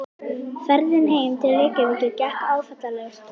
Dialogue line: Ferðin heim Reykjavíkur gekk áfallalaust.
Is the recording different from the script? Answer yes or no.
yes